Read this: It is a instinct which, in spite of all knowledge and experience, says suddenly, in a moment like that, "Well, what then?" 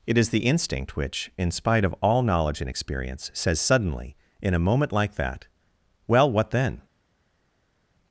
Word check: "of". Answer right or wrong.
right